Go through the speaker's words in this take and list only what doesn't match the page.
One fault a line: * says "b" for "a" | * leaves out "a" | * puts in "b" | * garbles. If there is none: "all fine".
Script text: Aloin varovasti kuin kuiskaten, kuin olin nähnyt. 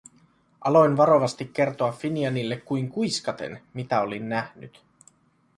* puts in "kertoa Finianille"
* says "mitä" for "kuin"